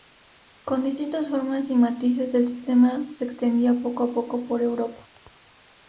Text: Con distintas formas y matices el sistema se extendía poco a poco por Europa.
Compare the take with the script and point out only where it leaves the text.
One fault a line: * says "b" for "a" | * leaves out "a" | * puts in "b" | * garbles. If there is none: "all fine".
all fine